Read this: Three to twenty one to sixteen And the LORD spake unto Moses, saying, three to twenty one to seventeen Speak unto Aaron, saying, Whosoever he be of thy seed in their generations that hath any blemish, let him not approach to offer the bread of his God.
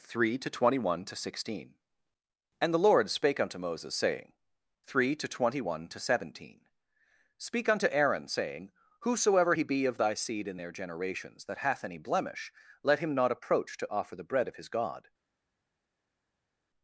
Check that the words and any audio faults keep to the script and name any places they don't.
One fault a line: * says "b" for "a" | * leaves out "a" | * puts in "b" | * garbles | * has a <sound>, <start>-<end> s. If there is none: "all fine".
all fine